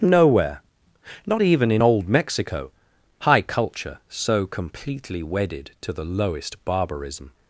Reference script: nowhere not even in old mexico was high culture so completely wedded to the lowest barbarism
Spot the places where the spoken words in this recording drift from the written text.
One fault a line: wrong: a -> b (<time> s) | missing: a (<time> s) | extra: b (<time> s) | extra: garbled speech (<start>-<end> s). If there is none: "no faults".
missing: was (2.7 s)